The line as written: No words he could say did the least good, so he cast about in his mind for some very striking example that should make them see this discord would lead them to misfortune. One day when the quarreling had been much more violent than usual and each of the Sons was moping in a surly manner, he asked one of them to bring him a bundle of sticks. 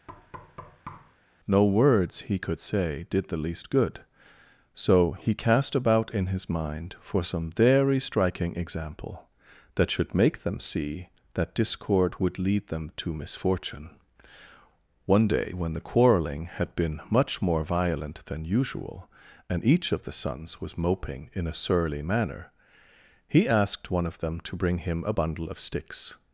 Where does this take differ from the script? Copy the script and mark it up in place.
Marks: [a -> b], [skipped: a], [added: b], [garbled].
No words he could say did the least good, so he cast about in his mind for some very striking example that should make them see [this -> that] discord would lead them to misfortune. One day when the quarreling had been much more violent than usual and each of the Sons was moping in a surly manner, he asked one of them to bring him a bundle of sticks.